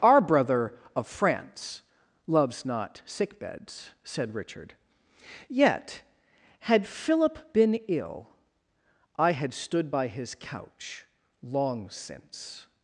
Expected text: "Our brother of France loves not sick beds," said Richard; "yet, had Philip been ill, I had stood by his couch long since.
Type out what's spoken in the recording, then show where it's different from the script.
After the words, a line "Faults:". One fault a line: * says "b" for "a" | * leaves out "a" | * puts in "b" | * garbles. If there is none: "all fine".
"Our brother of France loves not sick beds," said Richard; "yet, had Philip been ill, I had stood by his couch long since.
Faults:
all fine